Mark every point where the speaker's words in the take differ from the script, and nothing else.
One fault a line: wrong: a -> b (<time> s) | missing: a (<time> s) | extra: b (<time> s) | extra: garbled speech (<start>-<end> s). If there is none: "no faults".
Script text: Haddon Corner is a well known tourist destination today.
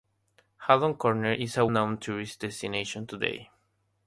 missing: well (1.7 s)